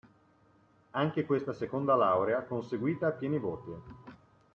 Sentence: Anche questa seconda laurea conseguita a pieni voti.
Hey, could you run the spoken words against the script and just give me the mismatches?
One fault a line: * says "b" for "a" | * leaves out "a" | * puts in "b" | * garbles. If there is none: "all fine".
all fine